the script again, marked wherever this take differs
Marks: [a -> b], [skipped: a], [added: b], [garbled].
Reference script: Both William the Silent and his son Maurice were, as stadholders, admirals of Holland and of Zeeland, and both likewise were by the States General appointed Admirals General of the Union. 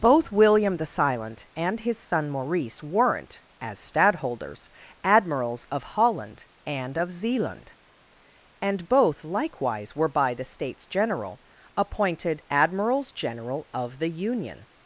Both William the Silent and his son Maurice [were, -> weren't] as stadholders, admirals of Holland and of Zeeland, and both likewise were by the States General appointed Admirals General of the Union.